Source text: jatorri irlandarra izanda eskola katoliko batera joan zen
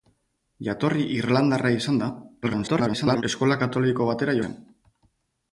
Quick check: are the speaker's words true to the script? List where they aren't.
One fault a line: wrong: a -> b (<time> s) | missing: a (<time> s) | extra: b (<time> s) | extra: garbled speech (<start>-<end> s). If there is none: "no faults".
extra: garbled speech (2.4-3.2 s)
missing: joan (4.4 s)